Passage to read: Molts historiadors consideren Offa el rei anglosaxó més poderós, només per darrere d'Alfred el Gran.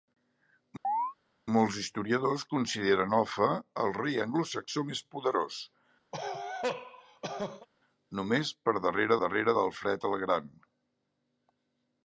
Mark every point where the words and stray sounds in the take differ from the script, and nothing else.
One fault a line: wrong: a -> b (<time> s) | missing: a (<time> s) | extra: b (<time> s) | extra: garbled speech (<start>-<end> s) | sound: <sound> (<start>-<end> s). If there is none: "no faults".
sound: chirp (0.8-1.1 s)
sound: cough (6.1-7.7 s)
extra: darrere (9.2 s)